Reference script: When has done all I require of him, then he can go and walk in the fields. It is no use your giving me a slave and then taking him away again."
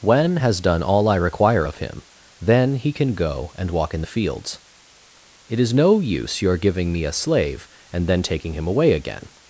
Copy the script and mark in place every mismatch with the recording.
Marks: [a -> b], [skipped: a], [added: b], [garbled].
When has done all I require of him, then he can go and walk in the fields. It is no use your giving me a slave and then taking him away again."